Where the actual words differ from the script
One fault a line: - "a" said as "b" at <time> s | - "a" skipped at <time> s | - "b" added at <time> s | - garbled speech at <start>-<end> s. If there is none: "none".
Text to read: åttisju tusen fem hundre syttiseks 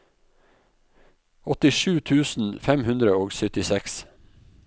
- "og" added at 3.2 s